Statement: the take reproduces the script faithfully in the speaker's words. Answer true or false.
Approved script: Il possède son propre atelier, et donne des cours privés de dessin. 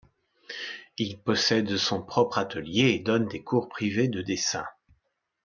true